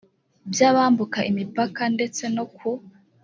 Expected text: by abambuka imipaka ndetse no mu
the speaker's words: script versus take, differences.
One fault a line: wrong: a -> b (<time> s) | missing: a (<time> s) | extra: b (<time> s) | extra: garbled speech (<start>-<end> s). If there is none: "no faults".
wrong: mu -> ku (2.6 s)